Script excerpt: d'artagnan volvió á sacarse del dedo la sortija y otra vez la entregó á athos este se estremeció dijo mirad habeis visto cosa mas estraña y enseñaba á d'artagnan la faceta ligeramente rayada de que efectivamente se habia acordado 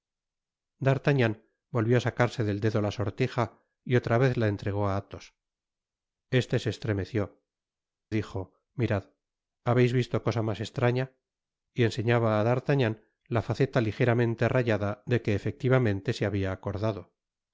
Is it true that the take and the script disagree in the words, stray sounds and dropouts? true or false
false